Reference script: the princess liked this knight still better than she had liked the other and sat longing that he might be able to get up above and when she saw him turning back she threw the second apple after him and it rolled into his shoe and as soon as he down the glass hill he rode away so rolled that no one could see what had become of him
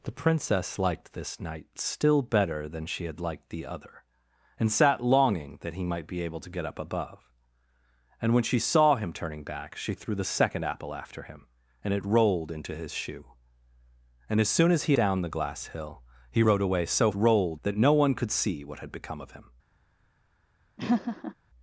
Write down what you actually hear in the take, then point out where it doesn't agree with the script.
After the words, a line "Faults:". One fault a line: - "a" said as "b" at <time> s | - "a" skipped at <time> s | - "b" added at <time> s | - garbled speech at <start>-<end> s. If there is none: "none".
the princess liked this knight still better than she had liked the other and sat longing that he might be able to get up above and when she saw him turning back she threw the second apple after him and it rolled into his shoe and as soon as he down the glass hill he rode away so rolled that no one could see what had become of him
Faults:
none